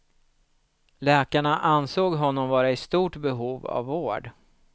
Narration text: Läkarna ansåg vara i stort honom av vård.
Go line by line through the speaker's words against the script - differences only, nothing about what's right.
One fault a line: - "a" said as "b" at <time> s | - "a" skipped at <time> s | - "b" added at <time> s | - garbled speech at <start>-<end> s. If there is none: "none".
- "honom" added at 2.1 s
- "honom" said as "behov" at 3.1 s